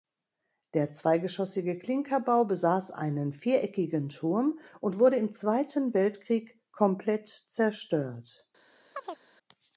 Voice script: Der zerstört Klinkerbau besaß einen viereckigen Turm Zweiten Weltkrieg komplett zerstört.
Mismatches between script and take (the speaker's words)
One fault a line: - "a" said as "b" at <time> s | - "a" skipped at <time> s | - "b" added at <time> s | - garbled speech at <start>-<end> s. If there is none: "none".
- "zerstört" said as "zweigeschossige" at 0.9 s
- "und wurde im" added at 4.8 s